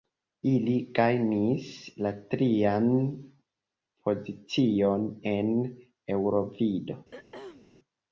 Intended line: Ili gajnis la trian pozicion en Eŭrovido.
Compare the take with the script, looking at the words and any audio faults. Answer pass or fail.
fail